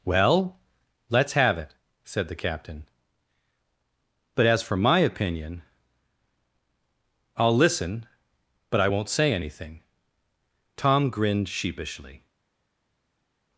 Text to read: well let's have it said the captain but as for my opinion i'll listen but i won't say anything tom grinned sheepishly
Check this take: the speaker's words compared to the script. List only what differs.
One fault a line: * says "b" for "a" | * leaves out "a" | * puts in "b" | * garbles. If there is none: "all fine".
all fine